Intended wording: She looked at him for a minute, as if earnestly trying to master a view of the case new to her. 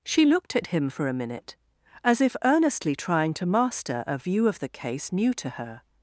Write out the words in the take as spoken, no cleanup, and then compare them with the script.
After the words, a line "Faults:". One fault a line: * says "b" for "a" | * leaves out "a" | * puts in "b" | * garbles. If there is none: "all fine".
She looked at him for a minute, as if earnestly trying to master a view of the case new to her.
Faults:
all fine